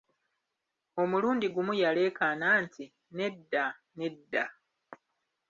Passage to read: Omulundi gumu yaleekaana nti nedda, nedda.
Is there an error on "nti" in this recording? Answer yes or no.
no